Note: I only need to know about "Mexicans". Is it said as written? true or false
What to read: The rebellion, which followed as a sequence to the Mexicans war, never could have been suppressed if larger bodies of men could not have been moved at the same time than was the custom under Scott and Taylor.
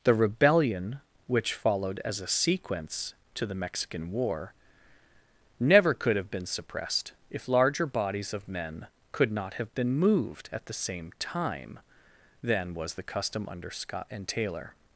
false